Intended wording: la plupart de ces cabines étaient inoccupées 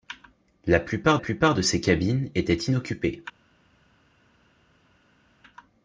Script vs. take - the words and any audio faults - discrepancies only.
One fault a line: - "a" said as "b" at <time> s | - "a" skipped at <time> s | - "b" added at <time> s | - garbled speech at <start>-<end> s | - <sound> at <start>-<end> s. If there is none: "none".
- "plupart" added at 1.2 s